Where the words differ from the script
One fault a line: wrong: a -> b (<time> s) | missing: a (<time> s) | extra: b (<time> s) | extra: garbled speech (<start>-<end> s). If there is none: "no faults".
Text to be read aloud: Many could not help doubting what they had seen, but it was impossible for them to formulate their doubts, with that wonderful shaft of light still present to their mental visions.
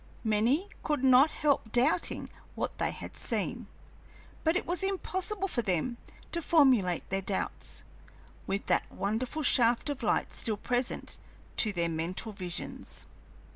no faults